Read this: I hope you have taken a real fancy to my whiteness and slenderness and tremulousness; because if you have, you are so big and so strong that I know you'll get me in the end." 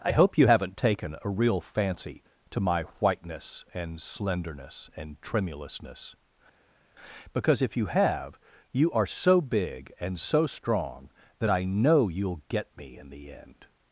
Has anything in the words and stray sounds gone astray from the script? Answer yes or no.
yes